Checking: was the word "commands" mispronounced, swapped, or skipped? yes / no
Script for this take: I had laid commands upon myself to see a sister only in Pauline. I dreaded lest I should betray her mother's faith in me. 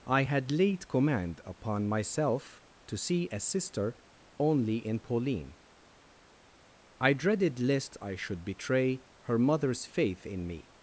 yes